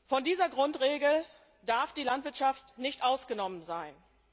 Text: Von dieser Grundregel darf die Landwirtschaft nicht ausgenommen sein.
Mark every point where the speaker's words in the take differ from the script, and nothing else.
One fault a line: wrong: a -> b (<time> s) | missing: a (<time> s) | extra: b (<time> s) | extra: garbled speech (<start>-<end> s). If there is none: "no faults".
no faults